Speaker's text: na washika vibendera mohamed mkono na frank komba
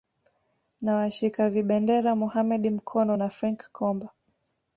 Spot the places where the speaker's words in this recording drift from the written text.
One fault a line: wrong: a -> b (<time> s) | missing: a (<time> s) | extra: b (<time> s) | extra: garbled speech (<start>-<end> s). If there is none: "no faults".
no faults